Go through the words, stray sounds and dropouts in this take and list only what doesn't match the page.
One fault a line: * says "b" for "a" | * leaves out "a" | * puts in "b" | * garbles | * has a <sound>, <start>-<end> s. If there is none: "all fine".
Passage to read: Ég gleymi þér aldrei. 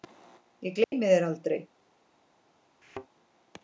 * has a dropout, 0.8-0.9 s
* has a thud, 2.8-3.1 s